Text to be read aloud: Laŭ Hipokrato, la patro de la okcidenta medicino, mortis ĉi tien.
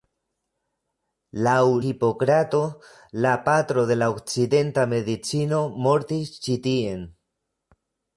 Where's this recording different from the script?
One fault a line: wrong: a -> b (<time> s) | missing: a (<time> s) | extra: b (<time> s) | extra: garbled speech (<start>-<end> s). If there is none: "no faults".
no faults